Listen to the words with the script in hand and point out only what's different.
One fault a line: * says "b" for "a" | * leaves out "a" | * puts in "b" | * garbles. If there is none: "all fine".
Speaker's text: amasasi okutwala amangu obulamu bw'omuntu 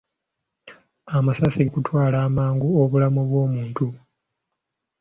all fine